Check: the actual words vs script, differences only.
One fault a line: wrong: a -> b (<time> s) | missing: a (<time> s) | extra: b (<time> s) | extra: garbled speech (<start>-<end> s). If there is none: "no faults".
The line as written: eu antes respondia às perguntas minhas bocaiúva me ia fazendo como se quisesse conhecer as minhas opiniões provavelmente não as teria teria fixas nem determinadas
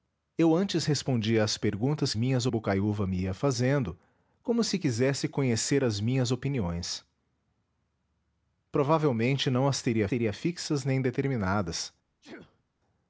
no faults